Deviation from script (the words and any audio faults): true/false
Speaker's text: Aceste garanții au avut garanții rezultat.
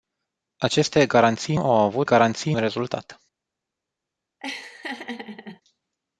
true